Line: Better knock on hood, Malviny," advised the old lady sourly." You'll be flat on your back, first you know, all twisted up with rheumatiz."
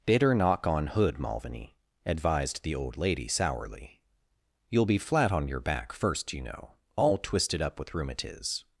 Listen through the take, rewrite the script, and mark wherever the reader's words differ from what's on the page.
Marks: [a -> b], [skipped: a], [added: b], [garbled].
Better knock on hood, Malviny," advised the old lady sourly." You'll be flat on your back, first you know, all twisted up with rheumatiz."